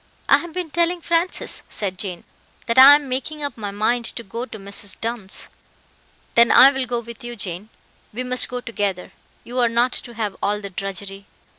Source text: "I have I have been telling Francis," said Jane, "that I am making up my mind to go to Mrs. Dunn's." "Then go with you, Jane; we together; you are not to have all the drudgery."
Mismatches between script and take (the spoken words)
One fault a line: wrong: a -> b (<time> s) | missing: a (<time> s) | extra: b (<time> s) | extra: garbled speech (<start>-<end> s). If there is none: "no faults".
missing: I have (0.5 s)
extra: I will (6.5 s)
extra: must go (8.2 s)